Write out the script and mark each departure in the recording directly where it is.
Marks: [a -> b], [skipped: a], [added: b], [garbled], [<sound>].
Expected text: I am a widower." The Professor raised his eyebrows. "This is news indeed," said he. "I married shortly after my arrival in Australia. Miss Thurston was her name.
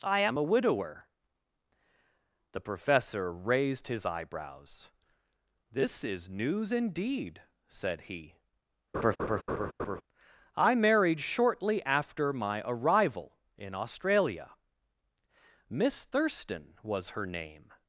I am a widower." The Professor raised his eyebrows. "This is news indeed," said he. [laugh] "I married shortly after my arrival in Australia. Miss Thurston was her name.